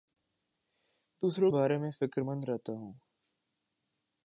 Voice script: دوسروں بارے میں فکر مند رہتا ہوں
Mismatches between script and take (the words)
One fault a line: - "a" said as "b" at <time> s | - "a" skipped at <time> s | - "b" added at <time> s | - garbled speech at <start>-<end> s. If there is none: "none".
none